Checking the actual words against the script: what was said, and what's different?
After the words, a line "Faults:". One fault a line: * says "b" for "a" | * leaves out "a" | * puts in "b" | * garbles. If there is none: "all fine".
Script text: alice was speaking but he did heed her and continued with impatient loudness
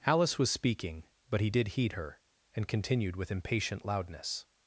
alice was speaking but he did heed her and continued with impatient loudness
Faults:
all fine